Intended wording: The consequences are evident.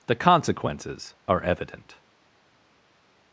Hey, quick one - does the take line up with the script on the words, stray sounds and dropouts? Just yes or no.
yes